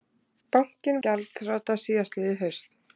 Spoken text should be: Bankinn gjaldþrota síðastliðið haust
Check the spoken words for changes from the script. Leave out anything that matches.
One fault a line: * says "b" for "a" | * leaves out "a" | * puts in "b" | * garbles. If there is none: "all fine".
all fine